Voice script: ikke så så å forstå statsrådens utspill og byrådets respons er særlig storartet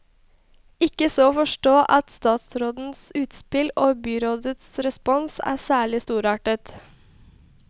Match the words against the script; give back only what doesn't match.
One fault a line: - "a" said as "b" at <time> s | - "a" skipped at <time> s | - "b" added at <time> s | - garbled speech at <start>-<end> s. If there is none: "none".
- "så" skipped at 1.2 s
- "at" added at 2.0 s